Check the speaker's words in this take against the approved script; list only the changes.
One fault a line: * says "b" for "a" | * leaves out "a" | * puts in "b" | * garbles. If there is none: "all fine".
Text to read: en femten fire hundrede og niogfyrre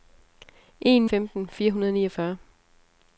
all fine